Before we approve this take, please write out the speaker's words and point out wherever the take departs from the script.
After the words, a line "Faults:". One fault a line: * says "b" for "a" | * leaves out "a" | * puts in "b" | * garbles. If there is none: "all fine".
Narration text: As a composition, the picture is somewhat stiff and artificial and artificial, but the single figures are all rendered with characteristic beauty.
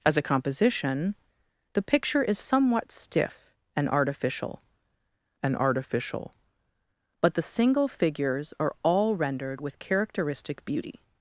As a composition, the picture is somewhat stiff and artificial and artificial, but the single figures are all rendered with characteristic beauty.
Faults:
all fine